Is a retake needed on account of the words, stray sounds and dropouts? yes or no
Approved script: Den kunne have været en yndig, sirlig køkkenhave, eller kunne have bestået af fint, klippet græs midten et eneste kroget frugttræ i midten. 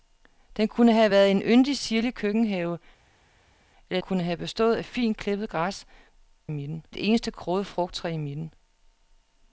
no